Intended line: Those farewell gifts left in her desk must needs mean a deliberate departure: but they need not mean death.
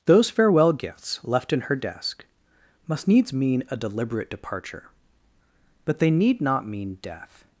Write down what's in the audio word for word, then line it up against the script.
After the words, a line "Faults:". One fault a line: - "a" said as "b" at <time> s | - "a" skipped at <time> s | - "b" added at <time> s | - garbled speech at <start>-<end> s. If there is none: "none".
Those farewell gifts left in her desk must needs mean a deliberate departure: but they need not mean death.
Faults:
none